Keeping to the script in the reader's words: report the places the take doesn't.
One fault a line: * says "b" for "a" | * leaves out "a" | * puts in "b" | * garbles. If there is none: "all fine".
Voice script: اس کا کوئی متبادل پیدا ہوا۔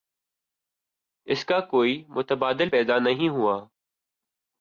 * puts in "نہیں"